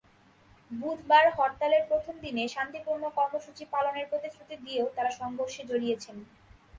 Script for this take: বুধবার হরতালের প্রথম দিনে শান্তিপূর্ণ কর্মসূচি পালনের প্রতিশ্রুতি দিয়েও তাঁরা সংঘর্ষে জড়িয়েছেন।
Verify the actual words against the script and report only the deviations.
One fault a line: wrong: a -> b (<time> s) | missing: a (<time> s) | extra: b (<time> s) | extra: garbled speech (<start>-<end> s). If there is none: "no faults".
no faults